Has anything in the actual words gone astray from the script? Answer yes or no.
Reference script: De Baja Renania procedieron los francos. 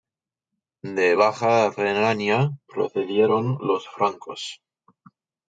no